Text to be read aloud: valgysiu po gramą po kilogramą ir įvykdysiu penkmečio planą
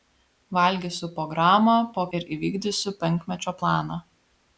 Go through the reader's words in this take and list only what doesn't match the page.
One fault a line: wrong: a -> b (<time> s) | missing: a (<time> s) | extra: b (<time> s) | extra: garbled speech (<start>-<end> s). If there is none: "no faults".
missing: kilogramą (2.0 s)